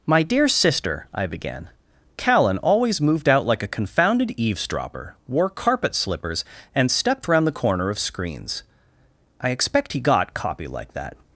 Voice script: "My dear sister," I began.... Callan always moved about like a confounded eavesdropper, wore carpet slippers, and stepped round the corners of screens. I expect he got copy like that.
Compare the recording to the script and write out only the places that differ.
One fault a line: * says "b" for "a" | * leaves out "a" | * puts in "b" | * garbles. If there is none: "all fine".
* says "out" for "about"
* says "corner" for "corners"